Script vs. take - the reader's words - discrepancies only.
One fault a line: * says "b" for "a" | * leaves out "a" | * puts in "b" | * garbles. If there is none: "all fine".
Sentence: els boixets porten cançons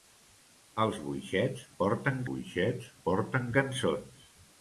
* puts in "boixets porten"